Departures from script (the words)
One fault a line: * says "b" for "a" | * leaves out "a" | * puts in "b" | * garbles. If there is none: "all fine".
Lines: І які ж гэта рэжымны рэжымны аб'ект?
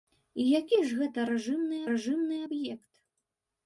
all fine